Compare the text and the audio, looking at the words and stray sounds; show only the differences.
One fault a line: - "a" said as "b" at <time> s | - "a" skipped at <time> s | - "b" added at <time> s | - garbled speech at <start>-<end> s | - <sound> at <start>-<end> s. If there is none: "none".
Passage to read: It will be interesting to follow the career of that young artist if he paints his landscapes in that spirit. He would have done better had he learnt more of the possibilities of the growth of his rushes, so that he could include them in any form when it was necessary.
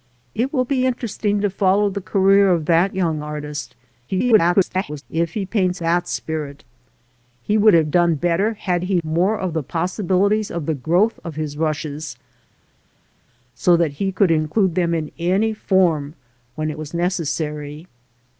- garbled speech at 4.1-5.0 s
- "his landscapes in" skipped at 5.8 s
- "learnt" skipped at 9.0 s